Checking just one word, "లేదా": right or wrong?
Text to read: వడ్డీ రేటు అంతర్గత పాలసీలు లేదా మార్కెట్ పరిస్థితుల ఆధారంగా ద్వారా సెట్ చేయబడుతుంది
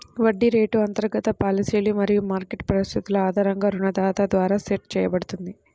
wrong